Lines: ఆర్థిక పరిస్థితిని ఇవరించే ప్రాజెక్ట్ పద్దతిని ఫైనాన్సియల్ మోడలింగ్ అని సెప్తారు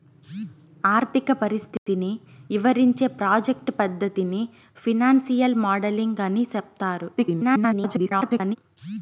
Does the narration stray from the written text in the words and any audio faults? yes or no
yes